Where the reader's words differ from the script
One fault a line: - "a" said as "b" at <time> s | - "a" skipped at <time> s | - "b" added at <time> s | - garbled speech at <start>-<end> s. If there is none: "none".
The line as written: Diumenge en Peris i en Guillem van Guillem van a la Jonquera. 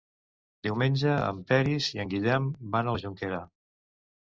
- "Guillem van" skipped at 2.9 s